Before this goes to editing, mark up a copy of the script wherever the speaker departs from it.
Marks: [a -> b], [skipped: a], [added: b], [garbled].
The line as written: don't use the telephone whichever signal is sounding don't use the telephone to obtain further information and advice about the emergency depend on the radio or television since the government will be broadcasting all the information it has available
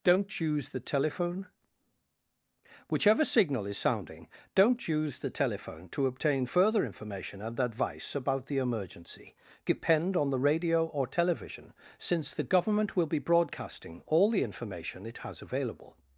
don't use the telephone whichever signal is sounding don't use the telephone to obtain further information and advice about the emergency depend on the radio or television since the government will be broadcasting all the information it has available